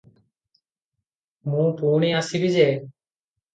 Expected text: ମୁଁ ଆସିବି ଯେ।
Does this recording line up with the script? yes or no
no